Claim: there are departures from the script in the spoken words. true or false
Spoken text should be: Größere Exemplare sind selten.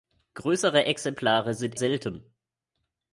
false